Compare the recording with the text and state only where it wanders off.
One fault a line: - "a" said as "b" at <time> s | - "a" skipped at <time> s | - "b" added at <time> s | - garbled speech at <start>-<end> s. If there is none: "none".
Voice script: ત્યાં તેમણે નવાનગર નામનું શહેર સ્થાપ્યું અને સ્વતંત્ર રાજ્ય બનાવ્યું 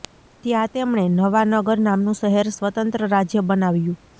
- "સ્થાપ્યું અને" skipped at 2.5 s